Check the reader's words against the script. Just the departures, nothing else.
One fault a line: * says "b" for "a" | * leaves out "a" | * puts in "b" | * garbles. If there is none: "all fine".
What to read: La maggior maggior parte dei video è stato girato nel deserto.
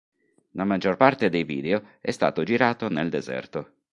* leaves out "maggior"